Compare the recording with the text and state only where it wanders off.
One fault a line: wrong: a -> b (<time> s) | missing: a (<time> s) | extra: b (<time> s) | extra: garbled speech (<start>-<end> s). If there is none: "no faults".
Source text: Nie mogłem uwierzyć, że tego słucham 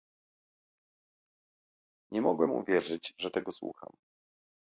no faults